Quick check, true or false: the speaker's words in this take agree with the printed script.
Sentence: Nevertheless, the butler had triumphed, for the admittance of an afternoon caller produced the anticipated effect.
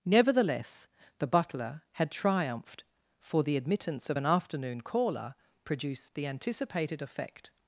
true